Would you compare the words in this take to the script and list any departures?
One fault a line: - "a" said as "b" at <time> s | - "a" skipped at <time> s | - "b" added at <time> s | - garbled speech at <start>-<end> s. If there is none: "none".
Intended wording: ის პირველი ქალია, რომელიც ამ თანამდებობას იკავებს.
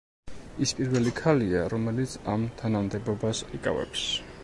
none